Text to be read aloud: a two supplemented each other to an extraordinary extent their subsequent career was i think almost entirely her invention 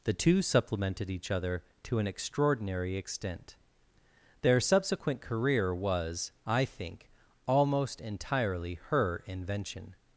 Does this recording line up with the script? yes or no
no